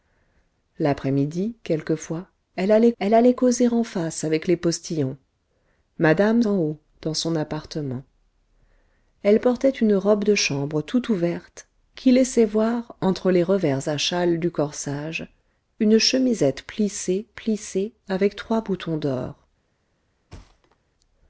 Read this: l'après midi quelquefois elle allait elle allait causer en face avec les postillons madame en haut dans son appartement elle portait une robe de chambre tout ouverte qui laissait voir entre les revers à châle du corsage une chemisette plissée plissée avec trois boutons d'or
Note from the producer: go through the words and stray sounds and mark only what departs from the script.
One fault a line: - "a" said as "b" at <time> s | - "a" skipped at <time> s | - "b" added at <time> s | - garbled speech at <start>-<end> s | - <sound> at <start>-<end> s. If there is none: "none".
- thud at 20.3-20.8 s